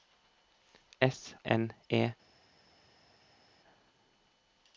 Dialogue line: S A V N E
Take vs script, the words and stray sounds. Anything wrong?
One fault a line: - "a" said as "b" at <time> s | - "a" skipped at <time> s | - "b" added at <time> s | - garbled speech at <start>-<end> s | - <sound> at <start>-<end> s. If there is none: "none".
- "A V" skipped at 1.4 s